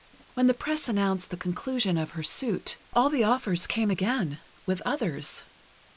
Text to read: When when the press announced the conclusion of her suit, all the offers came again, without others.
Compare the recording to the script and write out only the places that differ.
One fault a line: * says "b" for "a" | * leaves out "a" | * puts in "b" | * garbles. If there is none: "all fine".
* leaves out "when"
* says "with" for "without"